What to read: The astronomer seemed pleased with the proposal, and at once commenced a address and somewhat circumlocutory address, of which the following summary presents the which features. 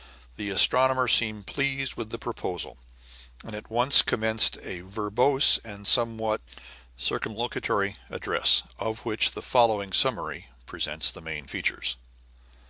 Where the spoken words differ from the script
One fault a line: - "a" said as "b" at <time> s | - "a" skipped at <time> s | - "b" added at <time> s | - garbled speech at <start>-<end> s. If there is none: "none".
- "address" said as "verbose" at 4.8 s
- "which" said as "main" at 11.2 s